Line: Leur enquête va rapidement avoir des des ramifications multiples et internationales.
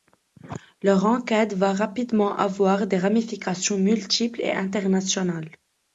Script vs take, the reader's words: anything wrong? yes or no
yes